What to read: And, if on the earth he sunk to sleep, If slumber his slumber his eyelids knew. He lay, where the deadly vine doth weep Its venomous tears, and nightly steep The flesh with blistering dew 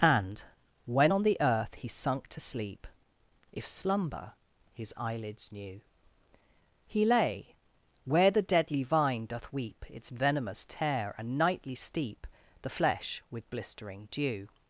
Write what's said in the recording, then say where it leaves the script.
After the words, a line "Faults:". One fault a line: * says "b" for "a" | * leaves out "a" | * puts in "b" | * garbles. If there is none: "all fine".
And, when on the earth he sunk to sleep, If slumber his eyelids knew. He lay, where the deadly vine doth weep Its venomous tear, and nightly steep The flesh with blistering dew
Faults:
* says "when" for "if"
* leaves out "slumber his"
* says "tear" for "tears"